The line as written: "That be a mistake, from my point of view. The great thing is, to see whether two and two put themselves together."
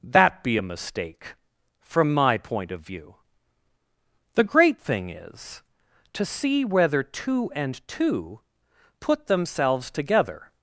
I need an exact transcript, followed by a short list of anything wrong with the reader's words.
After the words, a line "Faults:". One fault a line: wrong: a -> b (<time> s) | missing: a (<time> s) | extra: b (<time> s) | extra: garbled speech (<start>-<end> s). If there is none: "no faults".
"That be a mistake, from my point of view. The great thing is, to see whether two and two put themselves together."
Faults:
no faults